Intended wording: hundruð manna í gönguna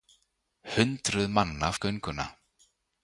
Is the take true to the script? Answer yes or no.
yes